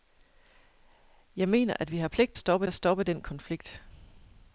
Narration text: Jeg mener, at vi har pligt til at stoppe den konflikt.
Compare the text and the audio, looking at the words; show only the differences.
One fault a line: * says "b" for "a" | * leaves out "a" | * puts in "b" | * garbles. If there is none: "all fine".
* says "stoppe" for "til"